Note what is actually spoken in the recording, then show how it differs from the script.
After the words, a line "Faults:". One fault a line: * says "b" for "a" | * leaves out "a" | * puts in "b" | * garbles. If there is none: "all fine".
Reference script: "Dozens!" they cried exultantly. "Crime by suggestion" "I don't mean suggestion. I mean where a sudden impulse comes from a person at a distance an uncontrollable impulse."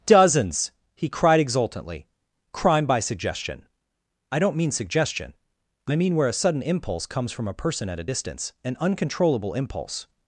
"Dozens!" he cried exultantly. "Crime by suggestion" "I don't mean suggestion. I mean where a sudden impulse comes from a person at a distance an uncontrollable impulse."
Faults:
* says "he" for "they"